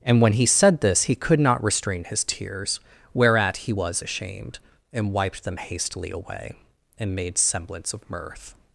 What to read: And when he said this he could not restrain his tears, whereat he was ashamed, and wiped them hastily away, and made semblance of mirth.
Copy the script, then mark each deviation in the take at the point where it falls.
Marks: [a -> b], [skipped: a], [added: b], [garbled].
And when he said this he could not restrain his tears, whereat he was ashamed, and wiped them hastily away, and made semblance of mirth.